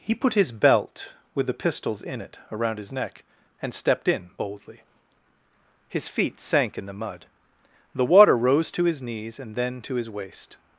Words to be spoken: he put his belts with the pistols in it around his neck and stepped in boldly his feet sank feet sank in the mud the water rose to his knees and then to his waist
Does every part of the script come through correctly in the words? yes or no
no